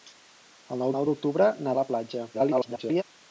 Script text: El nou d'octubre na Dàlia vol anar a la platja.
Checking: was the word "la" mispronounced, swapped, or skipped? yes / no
no